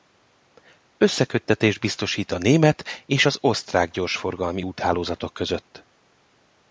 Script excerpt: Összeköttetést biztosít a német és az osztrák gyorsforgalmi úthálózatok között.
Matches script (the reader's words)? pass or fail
pass